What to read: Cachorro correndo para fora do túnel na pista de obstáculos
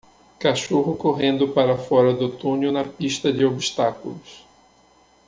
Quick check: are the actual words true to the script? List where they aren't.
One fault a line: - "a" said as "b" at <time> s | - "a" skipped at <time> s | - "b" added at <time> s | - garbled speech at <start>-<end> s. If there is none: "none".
none